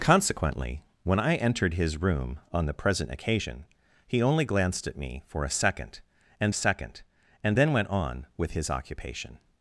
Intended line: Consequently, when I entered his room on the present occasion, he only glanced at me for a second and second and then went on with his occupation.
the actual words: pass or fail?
pass